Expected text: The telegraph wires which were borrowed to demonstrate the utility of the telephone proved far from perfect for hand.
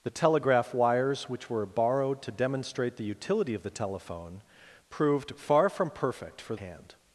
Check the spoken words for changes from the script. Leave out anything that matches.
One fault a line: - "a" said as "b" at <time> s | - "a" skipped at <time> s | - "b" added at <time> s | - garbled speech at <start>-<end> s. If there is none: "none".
none